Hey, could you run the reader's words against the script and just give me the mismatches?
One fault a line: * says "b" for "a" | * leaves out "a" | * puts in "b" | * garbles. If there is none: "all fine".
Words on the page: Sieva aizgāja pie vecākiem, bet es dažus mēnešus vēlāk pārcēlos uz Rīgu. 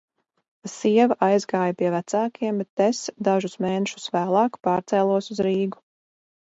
all fine